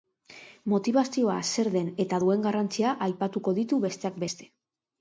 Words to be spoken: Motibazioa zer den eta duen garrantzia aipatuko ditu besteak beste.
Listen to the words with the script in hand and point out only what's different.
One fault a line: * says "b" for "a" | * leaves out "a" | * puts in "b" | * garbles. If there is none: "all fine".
all fine